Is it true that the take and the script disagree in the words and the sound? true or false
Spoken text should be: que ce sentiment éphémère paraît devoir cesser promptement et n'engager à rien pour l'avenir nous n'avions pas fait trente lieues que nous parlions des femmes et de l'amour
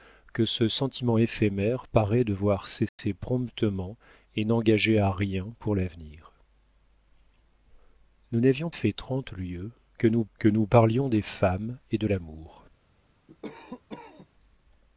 true